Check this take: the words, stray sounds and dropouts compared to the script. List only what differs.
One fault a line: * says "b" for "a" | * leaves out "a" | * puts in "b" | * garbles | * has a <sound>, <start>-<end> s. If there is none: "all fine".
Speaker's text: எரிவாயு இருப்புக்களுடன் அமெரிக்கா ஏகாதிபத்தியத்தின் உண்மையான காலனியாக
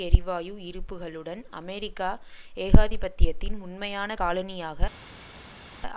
all fine